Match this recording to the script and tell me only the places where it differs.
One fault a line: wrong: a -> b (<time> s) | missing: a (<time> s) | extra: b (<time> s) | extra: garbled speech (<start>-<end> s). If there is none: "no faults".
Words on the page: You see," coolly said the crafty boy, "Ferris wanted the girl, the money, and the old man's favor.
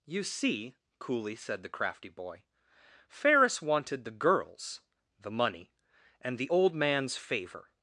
wrong: girl -> girls (4.1 s)